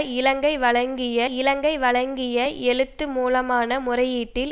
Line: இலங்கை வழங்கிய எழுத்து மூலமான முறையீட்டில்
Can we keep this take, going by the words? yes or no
no